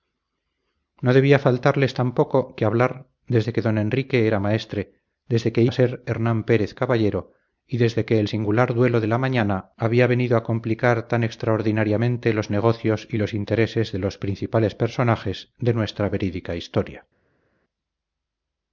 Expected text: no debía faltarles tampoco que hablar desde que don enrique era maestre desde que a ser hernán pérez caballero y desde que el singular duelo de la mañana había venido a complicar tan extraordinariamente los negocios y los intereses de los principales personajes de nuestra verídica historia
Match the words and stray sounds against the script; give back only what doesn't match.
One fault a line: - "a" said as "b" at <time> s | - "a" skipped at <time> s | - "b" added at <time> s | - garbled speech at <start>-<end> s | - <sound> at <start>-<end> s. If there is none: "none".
none